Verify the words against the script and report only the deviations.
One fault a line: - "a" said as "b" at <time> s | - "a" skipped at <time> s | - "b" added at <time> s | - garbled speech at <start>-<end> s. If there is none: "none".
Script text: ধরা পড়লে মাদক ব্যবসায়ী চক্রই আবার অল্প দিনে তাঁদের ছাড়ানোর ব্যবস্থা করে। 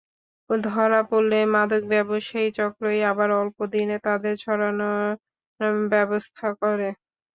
none